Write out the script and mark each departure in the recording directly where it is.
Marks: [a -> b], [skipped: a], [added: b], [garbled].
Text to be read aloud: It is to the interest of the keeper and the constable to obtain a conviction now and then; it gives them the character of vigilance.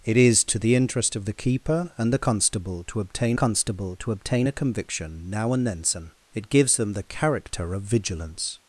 It is to the interest of the keeper and the constable to obtain [added: constable to obtain] a conviction now and then; it gives them the character of vigilance.